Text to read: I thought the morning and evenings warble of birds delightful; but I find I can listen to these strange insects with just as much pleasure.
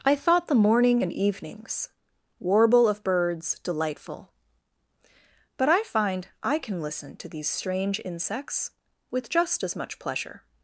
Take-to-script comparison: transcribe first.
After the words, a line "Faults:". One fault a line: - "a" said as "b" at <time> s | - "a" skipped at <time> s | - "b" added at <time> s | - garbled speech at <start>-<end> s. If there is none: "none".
I thought the morning and evenings warble of birds delightful; but I find I can listen to these strange insects with just as much pleasure.
Faults:
none